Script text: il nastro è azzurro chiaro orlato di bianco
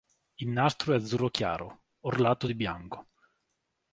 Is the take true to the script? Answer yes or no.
yes